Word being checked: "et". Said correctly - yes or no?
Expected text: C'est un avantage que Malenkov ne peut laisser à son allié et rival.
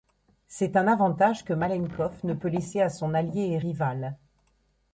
yes